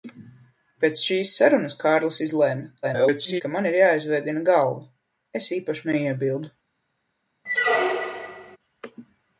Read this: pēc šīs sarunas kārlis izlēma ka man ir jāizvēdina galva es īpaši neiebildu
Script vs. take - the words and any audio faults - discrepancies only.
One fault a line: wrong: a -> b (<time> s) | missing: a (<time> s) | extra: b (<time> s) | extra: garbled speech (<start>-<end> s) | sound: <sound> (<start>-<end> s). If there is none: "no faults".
extra: garbled speech (2.8-3.4 s)
sound: squeak (7.4-8.6 s)